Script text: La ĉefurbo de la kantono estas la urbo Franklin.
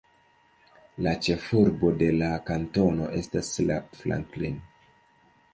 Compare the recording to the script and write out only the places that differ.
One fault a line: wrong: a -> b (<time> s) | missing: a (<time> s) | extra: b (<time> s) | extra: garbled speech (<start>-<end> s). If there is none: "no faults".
missing: urbo (3.8 s)